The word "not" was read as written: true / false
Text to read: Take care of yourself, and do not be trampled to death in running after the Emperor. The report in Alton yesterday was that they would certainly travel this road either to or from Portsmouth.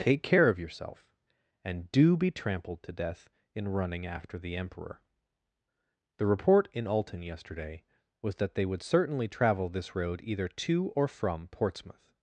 false